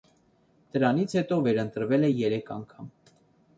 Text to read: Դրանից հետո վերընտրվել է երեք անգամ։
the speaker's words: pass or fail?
pass